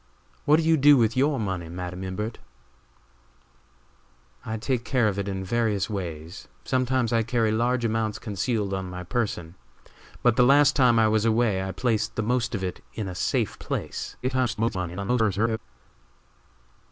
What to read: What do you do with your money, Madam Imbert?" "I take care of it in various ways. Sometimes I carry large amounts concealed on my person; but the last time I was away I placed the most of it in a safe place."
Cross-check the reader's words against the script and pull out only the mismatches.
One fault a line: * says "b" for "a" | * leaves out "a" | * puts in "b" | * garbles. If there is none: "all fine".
* garbles